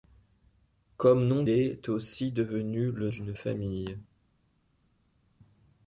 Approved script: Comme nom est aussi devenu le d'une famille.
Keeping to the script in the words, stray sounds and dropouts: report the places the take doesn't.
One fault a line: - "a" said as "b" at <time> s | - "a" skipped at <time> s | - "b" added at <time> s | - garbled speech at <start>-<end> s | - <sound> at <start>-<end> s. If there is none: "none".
none